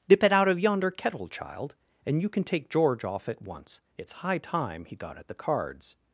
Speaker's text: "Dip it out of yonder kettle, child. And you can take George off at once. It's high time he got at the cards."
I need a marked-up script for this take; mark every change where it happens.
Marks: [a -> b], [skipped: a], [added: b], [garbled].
"Dip it out of yonder kettle, child. And you can take George off at once. It's high time he got at the cards."